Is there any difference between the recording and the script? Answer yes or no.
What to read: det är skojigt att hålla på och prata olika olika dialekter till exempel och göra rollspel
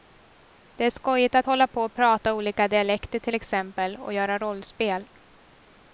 yes